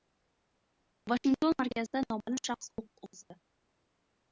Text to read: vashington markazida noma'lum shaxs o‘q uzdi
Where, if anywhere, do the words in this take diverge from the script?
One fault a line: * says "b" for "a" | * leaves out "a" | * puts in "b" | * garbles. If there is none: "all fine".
all fine